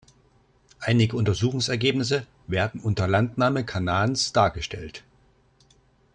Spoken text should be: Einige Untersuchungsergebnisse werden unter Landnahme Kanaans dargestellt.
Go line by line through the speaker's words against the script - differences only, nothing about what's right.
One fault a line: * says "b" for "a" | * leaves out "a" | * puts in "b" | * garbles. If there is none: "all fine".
all fine